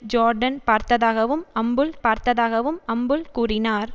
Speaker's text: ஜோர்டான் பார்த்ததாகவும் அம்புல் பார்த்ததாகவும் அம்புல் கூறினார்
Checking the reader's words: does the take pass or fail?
pass